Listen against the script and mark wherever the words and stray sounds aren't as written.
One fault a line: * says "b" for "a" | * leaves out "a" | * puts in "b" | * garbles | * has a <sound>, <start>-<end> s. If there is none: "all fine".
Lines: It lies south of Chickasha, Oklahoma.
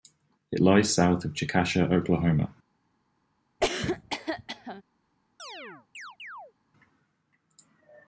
* has a cough, 3.6-4.8 s
* has a chirp, 5.4-6.5 s